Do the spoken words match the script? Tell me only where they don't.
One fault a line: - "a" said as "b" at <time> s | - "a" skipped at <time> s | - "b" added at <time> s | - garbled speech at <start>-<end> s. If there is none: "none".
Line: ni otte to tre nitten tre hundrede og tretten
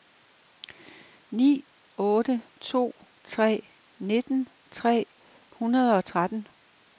none